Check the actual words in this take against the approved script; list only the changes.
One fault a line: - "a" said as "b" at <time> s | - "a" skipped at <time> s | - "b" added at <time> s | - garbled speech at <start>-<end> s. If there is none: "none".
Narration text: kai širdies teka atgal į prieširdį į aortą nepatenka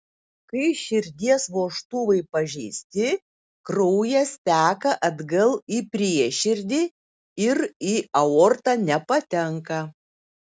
- "vožtuvai pažeisti kraujas" added at 1.6 s
- "ir" added at 7.5 s